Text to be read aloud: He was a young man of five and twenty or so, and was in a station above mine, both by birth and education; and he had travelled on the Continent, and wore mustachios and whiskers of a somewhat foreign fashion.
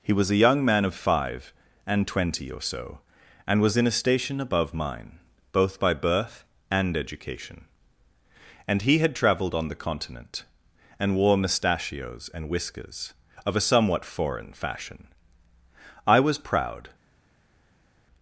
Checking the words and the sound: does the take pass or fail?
fail